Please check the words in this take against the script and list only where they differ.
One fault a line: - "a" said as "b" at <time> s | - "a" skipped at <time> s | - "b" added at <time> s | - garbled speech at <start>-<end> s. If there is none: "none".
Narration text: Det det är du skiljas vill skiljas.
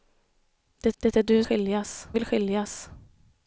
none